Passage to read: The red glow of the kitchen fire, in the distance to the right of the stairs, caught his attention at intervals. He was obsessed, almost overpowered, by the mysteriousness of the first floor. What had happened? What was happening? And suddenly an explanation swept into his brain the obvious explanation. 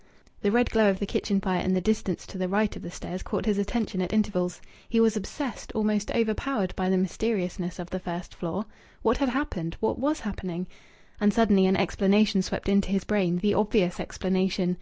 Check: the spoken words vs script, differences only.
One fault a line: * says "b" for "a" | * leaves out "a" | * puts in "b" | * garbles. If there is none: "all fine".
all fine